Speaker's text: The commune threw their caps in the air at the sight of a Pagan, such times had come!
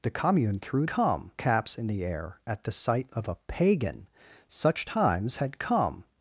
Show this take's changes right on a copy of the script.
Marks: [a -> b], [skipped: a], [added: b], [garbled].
The commune threw [their -> come] caps in the air at the sight of a Pagan, such times had come!